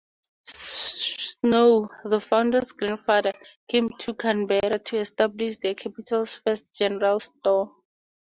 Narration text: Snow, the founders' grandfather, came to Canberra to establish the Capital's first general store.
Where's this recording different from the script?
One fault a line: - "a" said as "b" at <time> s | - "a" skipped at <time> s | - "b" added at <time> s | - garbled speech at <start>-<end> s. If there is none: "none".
none